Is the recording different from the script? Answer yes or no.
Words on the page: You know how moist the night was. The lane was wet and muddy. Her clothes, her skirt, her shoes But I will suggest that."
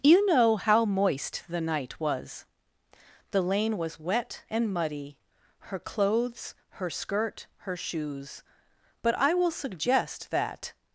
no